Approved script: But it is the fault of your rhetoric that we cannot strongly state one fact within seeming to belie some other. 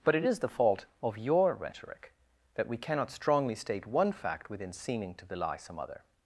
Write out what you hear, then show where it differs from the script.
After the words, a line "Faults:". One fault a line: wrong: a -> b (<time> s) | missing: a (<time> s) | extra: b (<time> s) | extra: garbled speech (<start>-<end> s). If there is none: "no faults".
But it is the fault of your rhetoric that we cannot strongly state one fact within seeming to belie some other.
Faults:
no faults